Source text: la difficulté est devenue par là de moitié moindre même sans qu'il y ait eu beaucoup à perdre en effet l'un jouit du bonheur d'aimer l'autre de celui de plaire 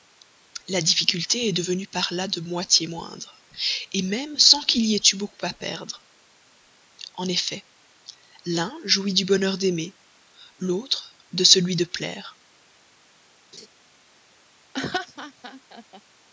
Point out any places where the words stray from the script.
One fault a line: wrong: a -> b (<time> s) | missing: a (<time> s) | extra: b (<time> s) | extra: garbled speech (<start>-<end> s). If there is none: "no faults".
no faults